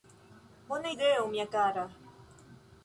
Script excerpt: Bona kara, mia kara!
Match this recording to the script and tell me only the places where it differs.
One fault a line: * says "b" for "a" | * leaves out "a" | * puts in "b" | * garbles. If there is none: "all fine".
* says "ideo" for "kara"